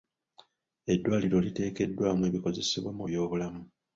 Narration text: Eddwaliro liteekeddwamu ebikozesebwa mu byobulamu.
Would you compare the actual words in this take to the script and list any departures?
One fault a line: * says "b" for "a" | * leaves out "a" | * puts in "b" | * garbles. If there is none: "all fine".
all fine